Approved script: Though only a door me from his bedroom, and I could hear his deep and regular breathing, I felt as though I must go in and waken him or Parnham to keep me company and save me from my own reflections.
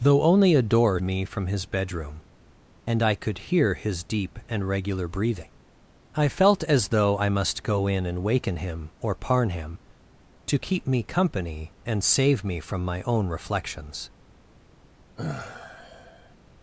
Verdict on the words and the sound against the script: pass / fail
fail